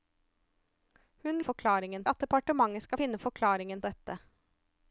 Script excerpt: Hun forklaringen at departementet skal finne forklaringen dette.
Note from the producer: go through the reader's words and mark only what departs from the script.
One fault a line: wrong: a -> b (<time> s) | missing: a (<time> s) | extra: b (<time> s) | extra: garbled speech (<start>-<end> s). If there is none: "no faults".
no faults